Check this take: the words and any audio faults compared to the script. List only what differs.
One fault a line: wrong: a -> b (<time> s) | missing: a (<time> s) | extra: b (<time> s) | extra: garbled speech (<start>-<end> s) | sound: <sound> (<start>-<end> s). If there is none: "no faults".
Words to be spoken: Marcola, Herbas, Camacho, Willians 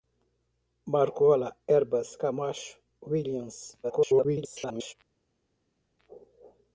extra: garbled speech (3.8-4.9 s)